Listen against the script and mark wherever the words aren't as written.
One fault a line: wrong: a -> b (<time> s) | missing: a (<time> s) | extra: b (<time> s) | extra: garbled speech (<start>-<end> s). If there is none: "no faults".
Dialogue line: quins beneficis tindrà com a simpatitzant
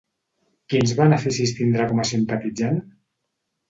no faults